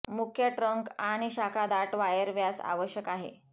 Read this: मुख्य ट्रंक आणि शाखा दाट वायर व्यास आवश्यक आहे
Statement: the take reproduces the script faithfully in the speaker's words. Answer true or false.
true